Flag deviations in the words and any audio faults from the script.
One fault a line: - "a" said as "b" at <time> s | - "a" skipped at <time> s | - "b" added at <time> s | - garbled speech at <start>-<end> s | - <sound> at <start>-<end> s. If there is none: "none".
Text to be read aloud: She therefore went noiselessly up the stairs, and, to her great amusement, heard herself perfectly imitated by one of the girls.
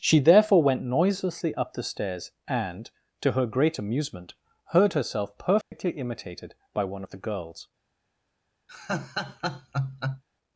- dropout at 5.6-5.7 s
- laugh at 8.7-10.2 s